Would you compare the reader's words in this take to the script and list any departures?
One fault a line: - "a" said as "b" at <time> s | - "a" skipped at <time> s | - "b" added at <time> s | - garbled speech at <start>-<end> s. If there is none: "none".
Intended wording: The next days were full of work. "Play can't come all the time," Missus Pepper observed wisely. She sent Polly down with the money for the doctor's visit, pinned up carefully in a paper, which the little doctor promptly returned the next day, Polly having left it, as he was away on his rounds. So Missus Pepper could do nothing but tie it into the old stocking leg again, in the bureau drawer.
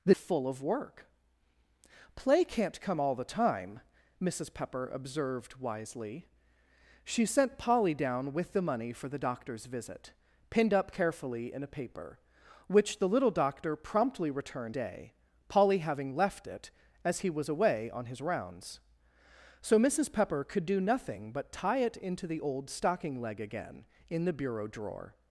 - "next days were" skipped at 0.1 s
- "the next" skipped at 14.8 s